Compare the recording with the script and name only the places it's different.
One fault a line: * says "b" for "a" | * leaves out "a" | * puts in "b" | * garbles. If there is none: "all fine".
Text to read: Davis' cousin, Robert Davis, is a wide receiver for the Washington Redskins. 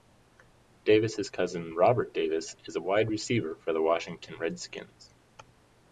all fine